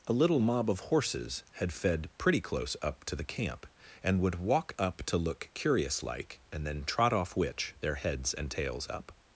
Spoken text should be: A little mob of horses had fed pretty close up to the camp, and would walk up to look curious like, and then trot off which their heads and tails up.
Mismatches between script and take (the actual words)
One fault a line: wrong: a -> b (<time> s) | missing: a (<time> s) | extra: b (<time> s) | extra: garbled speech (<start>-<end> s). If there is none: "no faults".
no faults